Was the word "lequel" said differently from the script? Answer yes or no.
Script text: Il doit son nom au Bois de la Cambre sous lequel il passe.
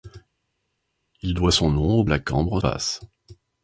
yes